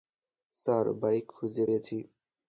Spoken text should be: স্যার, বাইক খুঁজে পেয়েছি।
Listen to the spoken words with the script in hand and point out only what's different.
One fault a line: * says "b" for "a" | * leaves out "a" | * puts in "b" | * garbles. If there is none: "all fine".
all fine